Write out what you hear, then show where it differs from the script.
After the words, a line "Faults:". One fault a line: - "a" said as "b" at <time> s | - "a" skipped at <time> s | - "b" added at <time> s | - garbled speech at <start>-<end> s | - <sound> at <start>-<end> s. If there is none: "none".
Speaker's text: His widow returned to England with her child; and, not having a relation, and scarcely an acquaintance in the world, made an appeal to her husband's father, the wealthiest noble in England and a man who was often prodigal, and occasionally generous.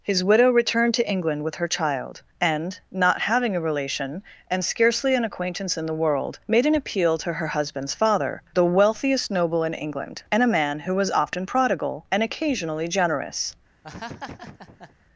His widow returned to England with her child; and, not having a relation, and scarcely an acquaintance in the world, made an appeal to her husband's father, the wealthiest noble in England and a man who was often prodigal, and occasionally generous.
Faults:
- laugh at 13.8-15.0 s